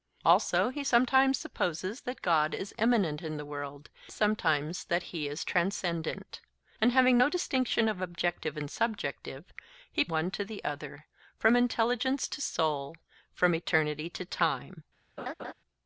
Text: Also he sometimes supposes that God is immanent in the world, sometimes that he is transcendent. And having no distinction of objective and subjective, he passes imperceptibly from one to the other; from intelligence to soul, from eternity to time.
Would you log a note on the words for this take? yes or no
yes